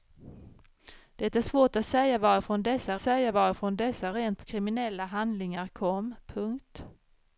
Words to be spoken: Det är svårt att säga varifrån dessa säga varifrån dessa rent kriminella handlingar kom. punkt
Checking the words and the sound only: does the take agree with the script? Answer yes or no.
yes